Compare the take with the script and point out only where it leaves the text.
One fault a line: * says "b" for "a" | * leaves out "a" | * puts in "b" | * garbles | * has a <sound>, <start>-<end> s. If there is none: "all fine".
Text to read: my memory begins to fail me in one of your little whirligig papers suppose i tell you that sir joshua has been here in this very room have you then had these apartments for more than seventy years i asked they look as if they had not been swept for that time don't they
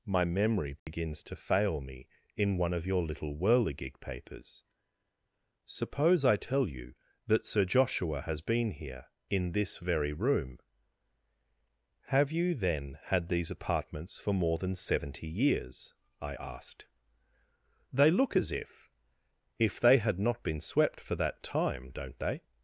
* has a dropout, 0.8-0.9 s
* puts in "if"